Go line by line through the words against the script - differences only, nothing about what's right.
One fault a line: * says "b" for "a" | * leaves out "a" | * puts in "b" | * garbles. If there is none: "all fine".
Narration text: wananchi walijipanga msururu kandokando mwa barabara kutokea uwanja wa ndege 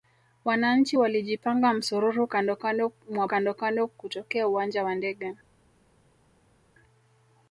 * says "kandokando" for "barabara"